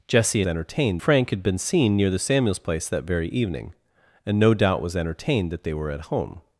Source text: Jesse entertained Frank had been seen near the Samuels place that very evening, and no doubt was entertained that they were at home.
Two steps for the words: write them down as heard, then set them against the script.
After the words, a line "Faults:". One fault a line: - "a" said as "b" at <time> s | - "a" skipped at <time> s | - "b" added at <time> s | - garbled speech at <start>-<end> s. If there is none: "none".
Jesse entertained Frank had been seen near the Samuels place that very evening, and no doubt was entertained that they were at home.
Faults:
none